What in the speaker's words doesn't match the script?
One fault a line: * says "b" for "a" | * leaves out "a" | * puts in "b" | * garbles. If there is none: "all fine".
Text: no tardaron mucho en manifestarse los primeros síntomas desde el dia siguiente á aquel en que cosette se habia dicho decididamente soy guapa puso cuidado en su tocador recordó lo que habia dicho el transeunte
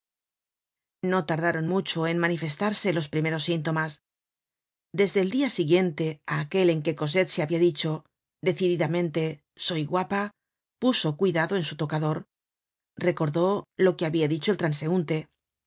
all fine